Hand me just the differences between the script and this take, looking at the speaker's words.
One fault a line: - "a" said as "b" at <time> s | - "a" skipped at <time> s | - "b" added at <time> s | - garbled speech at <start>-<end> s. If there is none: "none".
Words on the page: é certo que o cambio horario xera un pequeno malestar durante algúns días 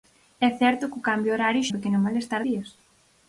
- "xera" skipped at 1.7 s
- "durante algúns" skipped at 2.4 s